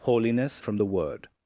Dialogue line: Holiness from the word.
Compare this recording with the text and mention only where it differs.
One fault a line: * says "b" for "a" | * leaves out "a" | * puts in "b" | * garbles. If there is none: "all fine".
all fine